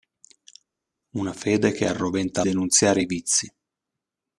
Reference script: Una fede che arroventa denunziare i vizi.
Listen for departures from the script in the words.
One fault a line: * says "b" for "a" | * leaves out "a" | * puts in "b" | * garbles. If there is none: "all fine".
all fine